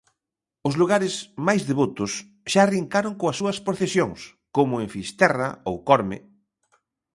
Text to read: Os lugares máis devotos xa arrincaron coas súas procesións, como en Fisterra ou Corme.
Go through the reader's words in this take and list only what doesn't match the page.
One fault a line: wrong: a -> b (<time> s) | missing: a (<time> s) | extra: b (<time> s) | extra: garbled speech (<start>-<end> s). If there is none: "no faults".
no faults